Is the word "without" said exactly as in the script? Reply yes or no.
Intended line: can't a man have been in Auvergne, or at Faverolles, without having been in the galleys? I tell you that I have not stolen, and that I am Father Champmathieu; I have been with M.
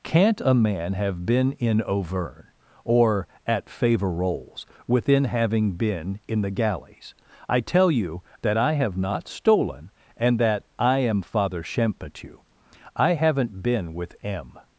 no